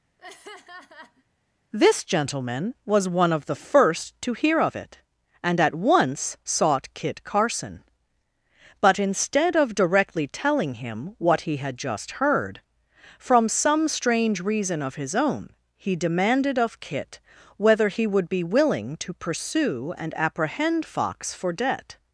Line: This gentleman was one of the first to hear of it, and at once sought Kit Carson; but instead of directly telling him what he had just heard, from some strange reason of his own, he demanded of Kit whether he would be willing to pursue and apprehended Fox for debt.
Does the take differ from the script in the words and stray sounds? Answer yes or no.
yes